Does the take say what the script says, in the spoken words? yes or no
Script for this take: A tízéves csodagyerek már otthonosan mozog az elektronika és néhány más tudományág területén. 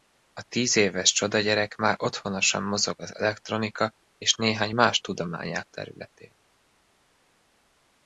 yes